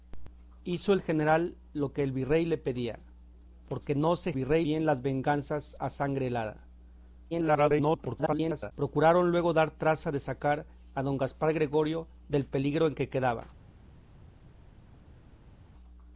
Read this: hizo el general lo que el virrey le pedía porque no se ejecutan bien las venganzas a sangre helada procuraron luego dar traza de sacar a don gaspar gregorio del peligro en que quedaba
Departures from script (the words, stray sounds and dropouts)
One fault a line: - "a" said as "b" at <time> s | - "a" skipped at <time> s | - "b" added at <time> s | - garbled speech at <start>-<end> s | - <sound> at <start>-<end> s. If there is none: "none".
- "ejecutan" said as "virrey" at 4.3 s
- garbled speech at 7.3-8.7 s